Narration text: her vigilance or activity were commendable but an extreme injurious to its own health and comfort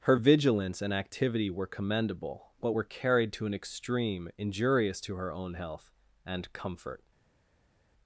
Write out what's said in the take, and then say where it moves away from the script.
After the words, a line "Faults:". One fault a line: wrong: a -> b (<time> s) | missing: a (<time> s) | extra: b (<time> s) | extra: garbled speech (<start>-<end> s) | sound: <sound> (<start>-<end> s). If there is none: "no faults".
her vigilance and activity were commendable but were carried to an extreme injurious to her own health and comfort
Faults:
wrong: or -> and (0.8 s)
extra: were carried to (2.7 s)
wrong: its -> her (5.2 s)